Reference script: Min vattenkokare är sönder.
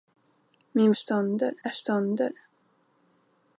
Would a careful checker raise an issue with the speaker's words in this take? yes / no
yes